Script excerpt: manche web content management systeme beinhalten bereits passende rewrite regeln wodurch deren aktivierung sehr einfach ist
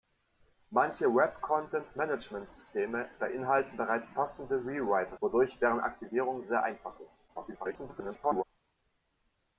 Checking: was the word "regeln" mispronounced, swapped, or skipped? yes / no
yes